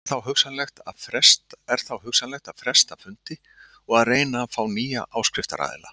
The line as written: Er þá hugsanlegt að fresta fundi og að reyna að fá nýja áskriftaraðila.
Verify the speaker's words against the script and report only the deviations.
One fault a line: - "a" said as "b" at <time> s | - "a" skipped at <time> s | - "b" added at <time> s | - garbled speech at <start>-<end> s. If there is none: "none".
none